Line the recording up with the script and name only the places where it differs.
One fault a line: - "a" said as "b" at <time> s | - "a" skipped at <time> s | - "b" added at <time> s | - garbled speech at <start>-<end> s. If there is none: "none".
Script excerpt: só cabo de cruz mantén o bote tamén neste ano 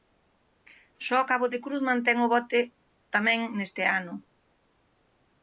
none